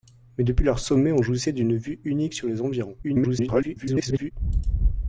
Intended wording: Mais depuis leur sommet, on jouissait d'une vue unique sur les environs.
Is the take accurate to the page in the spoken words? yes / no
no